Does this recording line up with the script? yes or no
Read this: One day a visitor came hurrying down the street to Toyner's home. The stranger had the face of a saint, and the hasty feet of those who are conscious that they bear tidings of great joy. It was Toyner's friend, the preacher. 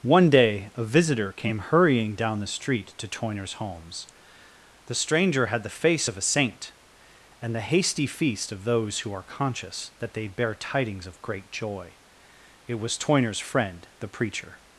no